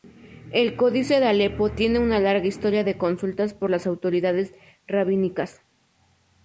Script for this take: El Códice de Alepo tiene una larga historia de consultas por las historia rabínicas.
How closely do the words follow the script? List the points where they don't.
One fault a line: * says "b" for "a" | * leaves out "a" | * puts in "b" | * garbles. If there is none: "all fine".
* says "autoridades" for "historia"